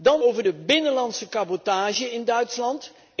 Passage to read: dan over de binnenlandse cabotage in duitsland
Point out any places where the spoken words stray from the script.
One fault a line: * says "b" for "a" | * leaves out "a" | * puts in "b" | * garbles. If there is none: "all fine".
all fine